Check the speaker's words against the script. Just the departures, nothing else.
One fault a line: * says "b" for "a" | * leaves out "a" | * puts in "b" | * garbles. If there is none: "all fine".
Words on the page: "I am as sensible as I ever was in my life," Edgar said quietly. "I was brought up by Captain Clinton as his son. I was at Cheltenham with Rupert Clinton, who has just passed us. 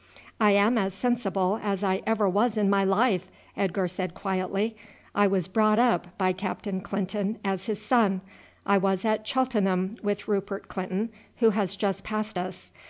all fine